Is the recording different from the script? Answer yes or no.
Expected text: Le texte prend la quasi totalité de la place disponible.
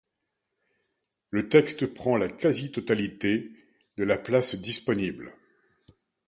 no